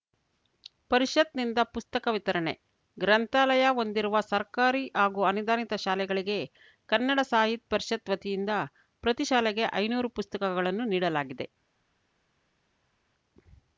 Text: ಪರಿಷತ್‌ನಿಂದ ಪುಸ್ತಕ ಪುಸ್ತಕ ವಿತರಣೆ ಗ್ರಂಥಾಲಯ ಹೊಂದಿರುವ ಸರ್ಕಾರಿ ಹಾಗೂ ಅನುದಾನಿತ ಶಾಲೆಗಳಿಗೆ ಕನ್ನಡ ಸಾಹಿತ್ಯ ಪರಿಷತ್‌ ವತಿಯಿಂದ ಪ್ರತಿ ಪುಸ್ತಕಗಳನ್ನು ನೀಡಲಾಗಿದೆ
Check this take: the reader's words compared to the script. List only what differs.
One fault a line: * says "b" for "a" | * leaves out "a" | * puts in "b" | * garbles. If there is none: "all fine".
* leaves out "ಪುಸ್ತಕ"
* puts in "ಶಾಲೆಗೆ ಐನೂರು"